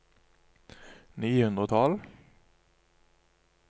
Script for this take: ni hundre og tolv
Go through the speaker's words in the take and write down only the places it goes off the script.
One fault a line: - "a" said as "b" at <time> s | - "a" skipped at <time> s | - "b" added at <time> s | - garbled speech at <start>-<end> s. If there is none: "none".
none